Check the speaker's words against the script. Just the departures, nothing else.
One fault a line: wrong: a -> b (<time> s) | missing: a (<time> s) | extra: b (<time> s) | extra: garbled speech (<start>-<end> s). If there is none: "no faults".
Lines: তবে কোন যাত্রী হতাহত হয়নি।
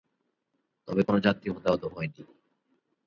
no faults